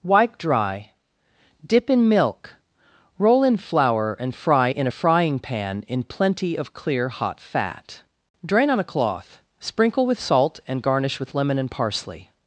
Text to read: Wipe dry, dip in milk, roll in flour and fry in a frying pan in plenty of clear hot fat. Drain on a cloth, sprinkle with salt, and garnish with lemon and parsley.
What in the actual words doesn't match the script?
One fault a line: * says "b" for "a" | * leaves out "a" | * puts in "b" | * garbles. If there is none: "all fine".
all fine